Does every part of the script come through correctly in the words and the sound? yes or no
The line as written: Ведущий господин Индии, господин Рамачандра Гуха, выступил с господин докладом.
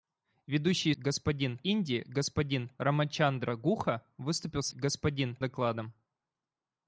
yes